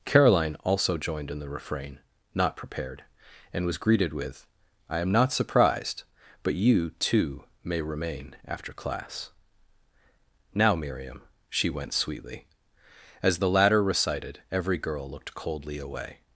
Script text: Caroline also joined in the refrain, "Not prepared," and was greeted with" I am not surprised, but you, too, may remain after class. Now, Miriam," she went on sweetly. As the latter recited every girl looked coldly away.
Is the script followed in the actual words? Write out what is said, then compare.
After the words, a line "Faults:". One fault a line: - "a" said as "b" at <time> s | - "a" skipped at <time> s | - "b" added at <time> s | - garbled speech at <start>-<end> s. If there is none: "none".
Caroline also joined in the refrain, "Not prepared," and was greeted with" I am not surprised, but you, too, may remain after class. Now, Miriam," she went sweetly. As the latter recited every girl looked coldly away.
Faults:
- "on" skipped at 11.9 s